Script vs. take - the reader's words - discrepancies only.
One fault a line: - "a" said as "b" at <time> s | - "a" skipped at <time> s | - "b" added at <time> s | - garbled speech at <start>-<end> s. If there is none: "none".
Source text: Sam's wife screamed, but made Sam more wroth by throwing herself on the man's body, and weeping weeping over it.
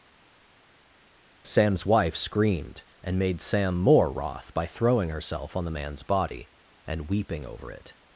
- "but" said as "and" at 3.0 s
- "weeping" skipped at 7.4 s